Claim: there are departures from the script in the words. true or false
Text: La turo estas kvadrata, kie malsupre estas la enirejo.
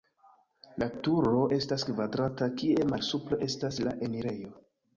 false